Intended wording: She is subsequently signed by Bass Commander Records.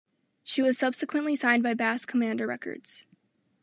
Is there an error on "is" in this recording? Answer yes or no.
yes